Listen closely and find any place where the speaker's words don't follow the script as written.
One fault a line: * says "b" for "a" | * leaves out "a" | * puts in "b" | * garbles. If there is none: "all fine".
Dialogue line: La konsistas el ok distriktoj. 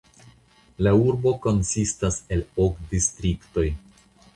* puts in "urbo"